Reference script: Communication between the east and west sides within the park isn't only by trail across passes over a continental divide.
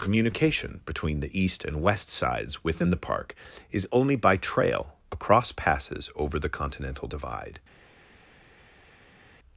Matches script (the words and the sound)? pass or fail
fail